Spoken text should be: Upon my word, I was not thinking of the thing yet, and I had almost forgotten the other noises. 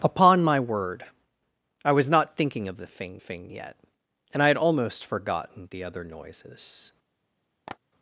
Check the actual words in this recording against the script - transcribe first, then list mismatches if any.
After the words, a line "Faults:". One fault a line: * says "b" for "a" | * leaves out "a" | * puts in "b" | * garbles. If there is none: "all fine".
Upon my word, I was not thinking of the thing thing yet, and I had almost forgotten the other noises.
Faults:
* puts in "thing"